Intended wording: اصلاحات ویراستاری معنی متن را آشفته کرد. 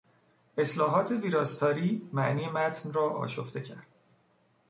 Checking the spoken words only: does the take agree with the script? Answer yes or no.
yes